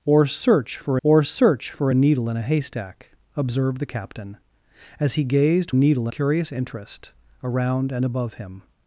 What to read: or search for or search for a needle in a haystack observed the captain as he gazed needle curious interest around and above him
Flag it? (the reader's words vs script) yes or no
no